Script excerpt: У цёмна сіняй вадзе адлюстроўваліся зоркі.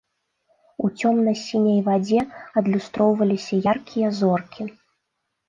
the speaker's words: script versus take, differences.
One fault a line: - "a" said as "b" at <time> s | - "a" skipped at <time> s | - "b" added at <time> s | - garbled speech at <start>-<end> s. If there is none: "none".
- "яркія" added at 3.7 s